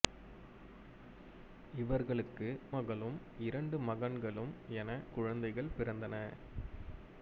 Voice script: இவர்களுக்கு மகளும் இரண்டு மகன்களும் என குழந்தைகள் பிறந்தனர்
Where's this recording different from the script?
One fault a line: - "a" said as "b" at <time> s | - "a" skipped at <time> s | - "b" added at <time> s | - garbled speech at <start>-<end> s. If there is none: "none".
none